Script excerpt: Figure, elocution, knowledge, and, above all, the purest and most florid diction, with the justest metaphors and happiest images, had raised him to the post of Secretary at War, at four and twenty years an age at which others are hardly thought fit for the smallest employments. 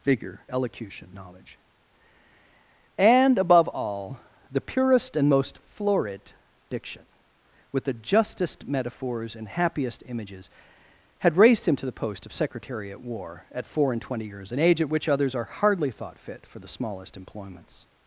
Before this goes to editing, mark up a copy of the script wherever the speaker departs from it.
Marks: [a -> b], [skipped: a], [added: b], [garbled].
Figure, elocution, knowledge, and, above all, the purest and most florid diction, with the justest metaphors and happiest images, had raised him to the post of Secretary at War, at four and twenty years an age at which others are hardly thought fit for the smallest employments.